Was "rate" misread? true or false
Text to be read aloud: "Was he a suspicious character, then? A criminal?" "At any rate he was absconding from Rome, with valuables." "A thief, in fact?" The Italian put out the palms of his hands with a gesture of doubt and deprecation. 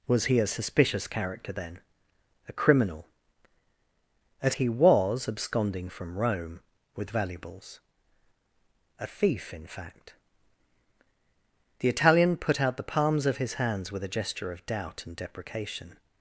true